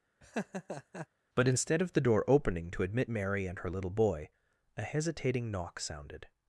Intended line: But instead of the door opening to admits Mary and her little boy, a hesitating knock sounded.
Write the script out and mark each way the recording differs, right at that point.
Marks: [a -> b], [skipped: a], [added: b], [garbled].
But instead of the door opening to [admits -> admit] Mary and her little boy, a hesitating knock sounded.